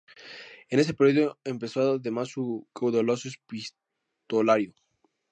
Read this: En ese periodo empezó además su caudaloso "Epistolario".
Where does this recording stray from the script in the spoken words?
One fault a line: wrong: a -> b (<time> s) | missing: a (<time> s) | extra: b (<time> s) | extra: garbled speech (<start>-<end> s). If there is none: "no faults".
no faults